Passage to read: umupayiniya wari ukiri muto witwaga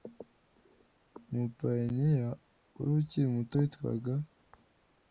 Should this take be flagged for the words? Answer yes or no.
no